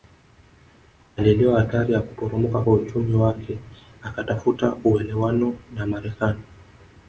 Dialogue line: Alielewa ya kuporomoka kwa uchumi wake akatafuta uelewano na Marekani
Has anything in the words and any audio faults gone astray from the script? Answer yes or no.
yes